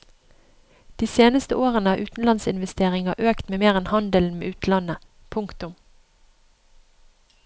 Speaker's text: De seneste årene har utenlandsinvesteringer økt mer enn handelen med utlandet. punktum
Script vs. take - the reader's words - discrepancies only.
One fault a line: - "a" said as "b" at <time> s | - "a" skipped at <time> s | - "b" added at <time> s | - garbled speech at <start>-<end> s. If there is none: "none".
none